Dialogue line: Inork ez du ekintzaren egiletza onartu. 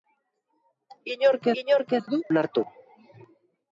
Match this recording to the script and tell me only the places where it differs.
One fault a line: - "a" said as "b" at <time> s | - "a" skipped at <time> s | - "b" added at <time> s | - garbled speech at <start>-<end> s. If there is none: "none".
- "inork" added at 1.6 s
- "ekintzaren egiletza" skipped at 2.2 s